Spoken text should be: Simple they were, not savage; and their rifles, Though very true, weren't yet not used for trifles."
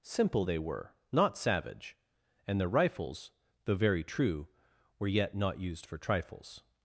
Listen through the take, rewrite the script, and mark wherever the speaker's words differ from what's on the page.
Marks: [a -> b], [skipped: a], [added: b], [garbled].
Simple they were, not savage; and their rifles, Though very true, [weren't -> were] yet not used for trifles."